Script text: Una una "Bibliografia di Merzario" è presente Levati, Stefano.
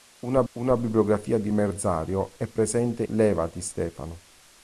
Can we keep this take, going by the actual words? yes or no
yes